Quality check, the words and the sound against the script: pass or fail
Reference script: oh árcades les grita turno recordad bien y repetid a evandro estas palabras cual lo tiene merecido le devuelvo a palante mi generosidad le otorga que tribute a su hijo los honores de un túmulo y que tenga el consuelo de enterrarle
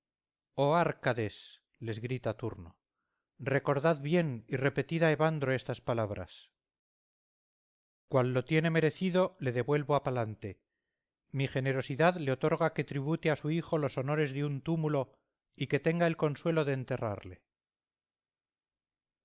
pass